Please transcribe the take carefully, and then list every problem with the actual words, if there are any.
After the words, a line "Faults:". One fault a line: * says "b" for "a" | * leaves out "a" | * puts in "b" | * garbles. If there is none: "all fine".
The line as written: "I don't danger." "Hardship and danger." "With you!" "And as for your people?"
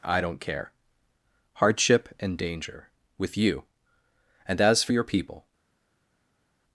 "I don't care." "Hardship and danger." "With you!" "And as for your people?"
Faults:
* says "care" for "danger"